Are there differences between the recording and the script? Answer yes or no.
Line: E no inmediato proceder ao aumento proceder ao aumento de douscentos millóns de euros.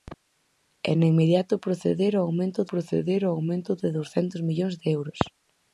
no